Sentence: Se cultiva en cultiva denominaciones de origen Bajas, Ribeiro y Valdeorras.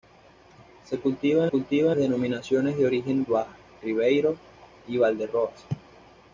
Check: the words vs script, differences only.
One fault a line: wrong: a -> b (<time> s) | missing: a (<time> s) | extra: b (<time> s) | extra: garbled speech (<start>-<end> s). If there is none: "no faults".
no faults